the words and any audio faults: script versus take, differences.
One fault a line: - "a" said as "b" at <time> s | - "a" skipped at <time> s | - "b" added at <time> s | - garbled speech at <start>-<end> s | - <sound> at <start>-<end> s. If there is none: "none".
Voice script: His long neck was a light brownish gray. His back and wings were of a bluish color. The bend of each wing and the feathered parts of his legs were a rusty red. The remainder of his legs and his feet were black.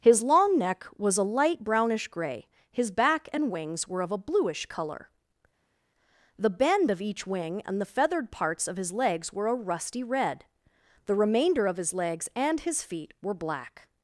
none